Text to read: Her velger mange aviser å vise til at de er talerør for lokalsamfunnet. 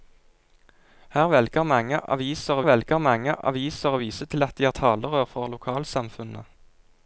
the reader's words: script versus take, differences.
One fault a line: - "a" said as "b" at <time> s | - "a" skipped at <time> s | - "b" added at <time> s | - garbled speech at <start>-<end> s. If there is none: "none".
- "velger mange aviser" added at 2.7 s